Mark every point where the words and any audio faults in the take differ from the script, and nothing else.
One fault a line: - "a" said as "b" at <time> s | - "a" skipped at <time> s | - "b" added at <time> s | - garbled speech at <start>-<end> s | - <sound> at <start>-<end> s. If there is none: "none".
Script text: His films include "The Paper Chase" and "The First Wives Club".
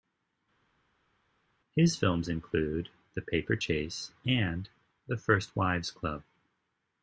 none